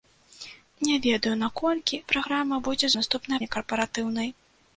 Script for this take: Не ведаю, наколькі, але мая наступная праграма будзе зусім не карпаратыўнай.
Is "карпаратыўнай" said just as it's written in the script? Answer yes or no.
yes